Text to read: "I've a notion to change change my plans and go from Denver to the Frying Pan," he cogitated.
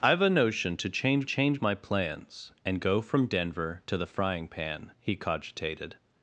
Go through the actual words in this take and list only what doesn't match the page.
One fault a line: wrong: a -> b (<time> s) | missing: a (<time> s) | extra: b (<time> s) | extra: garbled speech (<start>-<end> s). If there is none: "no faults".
no faults